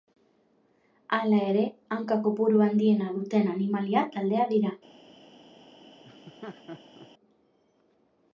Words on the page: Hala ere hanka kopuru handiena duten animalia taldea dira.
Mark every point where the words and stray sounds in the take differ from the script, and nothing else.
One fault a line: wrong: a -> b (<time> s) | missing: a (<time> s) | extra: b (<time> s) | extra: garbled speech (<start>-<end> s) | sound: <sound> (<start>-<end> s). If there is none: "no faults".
sound: laugh (6.0-7.1 s)